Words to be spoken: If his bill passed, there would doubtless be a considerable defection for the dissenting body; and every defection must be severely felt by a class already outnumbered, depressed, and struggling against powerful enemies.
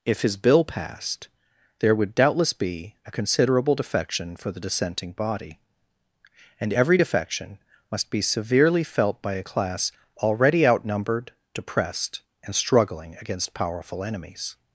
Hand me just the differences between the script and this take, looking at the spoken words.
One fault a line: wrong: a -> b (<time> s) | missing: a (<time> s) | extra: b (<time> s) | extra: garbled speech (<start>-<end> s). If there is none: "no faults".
no faults